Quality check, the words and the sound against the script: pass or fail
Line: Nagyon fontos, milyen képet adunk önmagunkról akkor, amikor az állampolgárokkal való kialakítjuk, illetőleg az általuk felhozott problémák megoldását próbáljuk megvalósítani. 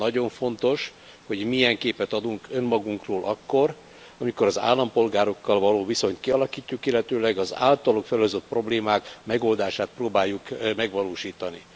fail